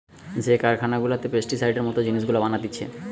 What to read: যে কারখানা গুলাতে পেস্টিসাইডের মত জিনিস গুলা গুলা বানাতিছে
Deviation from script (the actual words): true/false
true